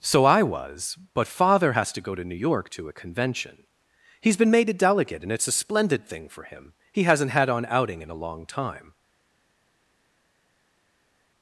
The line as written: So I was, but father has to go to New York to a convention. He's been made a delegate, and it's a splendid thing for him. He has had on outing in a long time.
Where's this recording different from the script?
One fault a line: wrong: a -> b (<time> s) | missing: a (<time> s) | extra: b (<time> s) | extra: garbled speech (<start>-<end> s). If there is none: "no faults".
wrong: has -> hasn't (7.0 s)